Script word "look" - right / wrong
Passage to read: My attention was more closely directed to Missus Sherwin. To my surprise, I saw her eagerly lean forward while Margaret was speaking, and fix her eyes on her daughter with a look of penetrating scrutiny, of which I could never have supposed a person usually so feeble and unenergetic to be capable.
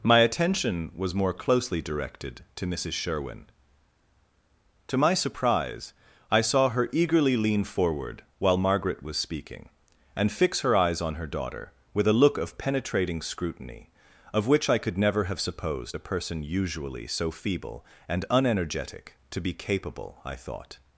right